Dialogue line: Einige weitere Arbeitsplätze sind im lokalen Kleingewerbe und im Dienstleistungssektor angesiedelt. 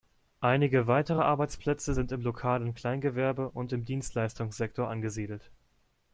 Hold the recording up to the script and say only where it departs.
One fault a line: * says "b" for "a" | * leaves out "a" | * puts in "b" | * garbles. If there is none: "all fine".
all fine